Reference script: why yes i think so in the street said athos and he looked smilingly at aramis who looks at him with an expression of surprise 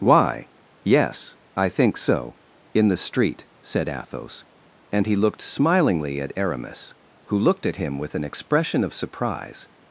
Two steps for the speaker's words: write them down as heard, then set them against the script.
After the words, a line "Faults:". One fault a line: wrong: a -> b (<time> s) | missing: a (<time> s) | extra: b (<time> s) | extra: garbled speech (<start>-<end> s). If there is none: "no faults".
why yes i think so in the street said athos and he looked smilingly at aramis who looked at him with an expression of surprise
Faults:
wrong: looks -> looked (7.4 s)